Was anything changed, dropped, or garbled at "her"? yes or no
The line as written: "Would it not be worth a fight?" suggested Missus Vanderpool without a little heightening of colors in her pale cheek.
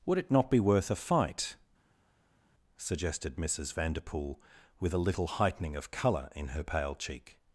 no